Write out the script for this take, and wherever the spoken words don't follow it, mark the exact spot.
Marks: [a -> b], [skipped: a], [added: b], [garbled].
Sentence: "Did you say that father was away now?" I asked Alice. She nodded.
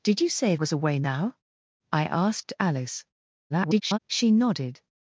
"Did you say [skipped: that father] was away now?" I asked Alice. [garbled] She nodded.